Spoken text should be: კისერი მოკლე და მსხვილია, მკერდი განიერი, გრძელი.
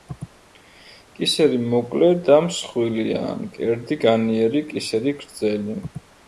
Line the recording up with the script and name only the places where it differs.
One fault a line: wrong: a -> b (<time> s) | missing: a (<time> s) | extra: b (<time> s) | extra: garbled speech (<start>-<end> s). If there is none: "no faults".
extra: კისერი (4.7 s)